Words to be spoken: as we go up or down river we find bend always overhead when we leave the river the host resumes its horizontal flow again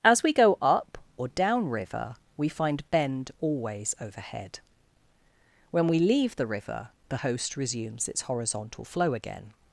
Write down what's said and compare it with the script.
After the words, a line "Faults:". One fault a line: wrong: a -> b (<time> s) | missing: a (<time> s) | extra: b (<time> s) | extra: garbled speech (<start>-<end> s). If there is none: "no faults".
as we go up or down river we find bend always overhead when we leave the river the host resumes its horizontal flow again
Faults:
no faults